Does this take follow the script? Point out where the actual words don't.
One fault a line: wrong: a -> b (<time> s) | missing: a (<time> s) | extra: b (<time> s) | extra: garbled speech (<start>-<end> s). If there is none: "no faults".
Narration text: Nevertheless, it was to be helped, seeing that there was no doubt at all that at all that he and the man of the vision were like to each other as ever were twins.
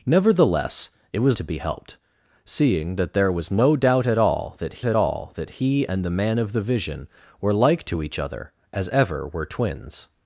no faults